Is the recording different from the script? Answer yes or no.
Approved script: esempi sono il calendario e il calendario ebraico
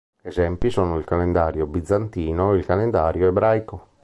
yes